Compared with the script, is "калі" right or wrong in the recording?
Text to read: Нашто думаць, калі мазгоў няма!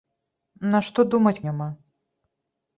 wrong